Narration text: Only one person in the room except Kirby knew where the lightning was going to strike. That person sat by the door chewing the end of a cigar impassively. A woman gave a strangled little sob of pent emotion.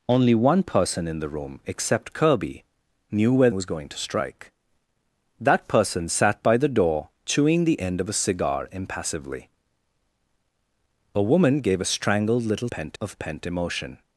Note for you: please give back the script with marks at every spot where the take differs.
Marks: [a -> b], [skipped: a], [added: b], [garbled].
Only one person in the room except Kirby knew where [skipped: the lightning] was going to strike. That person sat by the door chewing the end of a cigar impassively. A woman gave a strangled little [sob -> pent] of pent emotion.